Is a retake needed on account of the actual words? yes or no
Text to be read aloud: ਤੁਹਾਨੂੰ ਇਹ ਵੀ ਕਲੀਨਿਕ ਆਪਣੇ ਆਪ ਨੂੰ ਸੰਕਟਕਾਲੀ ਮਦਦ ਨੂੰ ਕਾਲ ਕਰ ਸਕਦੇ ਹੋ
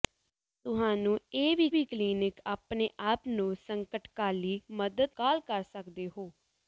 yes